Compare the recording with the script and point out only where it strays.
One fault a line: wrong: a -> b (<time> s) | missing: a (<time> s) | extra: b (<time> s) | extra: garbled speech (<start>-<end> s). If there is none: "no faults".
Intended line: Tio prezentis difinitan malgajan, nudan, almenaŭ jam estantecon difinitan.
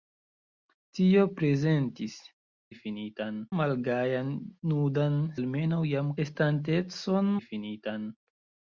no faults